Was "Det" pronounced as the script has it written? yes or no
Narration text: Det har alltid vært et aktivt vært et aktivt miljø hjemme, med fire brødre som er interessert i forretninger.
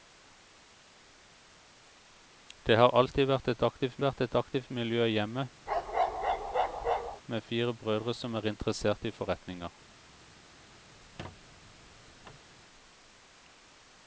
yes